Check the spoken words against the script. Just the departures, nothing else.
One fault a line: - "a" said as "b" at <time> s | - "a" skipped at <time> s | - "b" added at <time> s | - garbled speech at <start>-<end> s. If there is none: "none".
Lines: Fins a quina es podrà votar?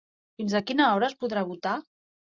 - "hora" added at 0.9 s